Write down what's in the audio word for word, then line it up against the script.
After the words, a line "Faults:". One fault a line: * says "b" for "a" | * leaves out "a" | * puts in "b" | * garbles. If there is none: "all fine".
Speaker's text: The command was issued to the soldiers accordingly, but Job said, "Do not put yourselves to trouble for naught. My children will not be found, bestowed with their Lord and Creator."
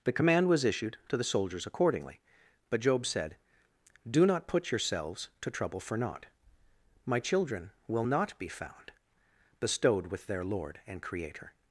The command was issued to the soldiers accordingly, but Job said, "Do not put yourselves to trouble for naught. My children will not be found, bestowed with their Lord and Creator."
Faults:
all fine